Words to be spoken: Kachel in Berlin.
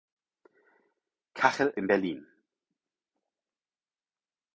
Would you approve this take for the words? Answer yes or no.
yes